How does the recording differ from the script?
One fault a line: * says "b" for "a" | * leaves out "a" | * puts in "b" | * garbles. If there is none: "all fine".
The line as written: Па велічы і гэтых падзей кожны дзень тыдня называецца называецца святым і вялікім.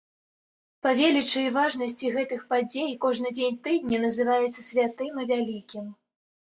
* puts in "важнасці"
* leaves out "называецца"